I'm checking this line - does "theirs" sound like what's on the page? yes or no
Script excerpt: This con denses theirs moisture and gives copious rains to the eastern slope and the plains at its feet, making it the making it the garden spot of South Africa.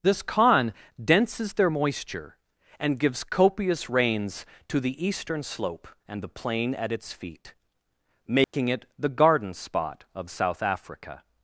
no